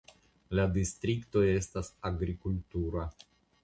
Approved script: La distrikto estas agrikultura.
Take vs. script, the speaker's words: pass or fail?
pass